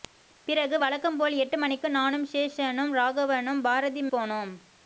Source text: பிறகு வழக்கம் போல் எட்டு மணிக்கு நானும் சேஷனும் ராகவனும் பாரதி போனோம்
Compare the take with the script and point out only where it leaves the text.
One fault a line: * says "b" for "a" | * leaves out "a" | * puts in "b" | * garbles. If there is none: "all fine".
all fine